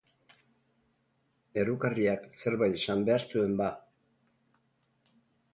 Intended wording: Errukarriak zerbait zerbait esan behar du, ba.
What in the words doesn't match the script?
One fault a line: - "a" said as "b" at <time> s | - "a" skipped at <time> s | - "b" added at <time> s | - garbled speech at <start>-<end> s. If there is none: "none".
- "zerbait" skipped at 2.8 s
- "du" said as "zuen" at 3.4 s